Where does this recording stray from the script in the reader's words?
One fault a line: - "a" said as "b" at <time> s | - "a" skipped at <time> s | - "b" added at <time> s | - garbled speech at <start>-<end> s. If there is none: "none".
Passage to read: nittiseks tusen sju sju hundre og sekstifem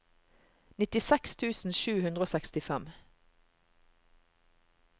- "sju" skipped at 1.9 s